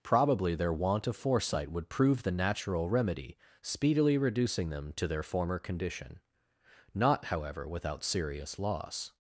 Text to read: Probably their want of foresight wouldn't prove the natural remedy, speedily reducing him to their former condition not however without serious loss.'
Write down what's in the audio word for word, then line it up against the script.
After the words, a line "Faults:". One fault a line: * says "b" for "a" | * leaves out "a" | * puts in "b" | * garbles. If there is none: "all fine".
Probably their want of foresight would prove the natural remedy, speedily reducing them to their former condition not however without serious loss.'
Faults:
* says "would" for "wouldn't"
* says "them" for "him"